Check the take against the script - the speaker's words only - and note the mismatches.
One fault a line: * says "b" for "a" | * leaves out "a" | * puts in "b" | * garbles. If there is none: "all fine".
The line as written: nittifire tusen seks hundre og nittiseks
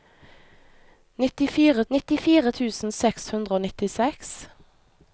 * puts in "nittifire"